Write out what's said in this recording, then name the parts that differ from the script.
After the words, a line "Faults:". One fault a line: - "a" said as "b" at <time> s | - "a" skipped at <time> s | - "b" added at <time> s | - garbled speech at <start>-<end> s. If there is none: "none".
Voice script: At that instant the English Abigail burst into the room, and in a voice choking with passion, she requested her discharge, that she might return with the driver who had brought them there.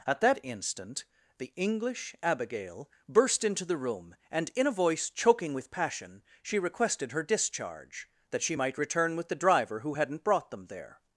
At that instant the English Abigail burst into the room, and in a voice choking with passion, she requested her discharge, that she might return with the driver who hadn't brought them there.
Faults:
- "had" said as "hadn't" at 9.9 s